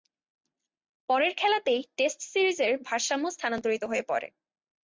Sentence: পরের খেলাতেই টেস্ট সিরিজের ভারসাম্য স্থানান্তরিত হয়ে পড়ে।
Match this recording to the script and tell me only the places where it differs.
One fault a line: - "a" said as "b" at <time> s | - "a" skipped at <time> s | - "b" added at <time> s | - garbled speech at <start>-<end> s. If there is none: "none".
none